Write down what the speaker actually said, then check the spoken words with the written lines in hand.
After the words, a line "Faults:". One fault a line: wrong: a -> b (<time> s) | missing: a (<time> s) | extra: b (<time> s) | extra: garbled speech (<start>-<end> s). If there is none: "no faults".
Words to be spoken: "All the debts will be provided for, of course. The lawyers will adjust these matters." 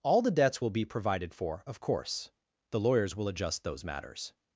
"All the debts will be provided for, of course. The lawyers will adjust those matters."
Faults:
wrong: these -> those (3.6 s)